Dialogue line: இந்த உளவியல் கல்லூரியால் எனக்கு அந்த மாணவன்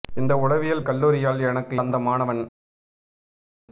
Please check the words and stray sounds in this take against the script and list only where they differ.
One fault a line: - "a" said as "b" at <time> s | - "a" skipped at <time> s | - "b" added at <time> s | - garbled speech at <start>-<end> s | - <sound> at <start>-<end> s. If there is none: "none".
none